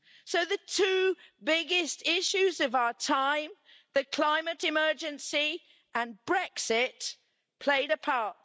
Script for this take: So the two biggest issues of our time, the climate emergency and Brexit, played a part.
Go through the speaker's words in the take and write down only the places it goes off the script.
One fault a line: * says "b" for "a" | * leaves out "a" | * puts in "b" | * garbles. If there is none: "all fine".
all fine